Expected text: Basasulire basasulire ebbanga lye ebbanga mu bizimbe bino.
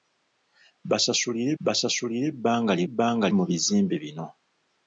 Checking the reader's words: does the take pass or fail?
pass